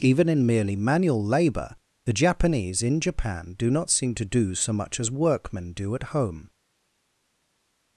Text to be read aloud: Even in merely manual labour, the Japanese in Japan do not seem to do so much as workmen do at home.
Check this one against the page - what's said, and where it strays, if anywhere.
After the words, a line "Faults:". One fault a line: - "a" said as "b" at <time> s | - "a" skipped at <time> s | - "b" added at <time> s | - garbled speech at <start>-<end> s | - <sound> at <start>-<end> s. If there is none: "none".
Even in merely manual labour, the Japanese in Japan do not seem to do so much as workmen do at home.
Faults:
none